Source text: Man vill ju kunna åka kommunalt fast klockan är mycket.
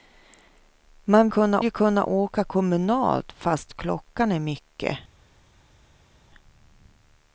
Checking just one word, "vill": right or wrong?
wrong